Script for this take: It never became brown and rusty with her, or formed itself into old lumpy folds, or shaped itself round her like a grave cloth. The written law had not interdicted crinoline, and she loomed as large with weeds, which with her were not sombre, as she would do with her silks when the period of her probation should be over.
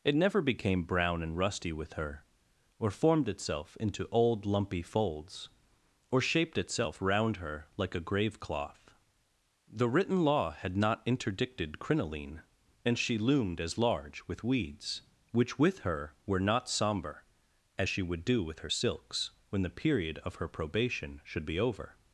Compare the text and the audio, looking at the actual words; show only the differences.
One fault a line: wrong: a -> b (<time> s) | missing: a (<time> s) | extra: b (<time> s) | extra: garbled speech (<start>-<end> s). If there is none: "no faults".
no faults